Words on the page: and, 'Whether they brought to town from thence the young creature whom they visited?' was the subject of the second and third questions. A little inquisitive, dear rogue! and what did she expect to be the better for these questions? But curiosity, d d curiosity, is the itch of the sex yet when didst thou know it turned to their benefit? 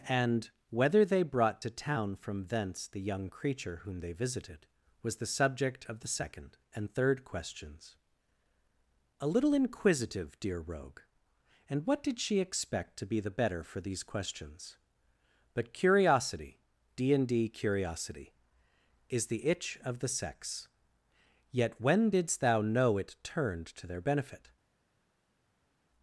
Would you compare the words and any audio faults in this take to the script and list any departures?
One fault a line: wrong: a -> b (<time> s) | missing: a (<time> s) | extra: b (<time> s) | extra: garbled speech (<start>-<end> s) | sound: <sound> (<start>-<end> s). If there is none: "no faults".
extra: and (17.1 s)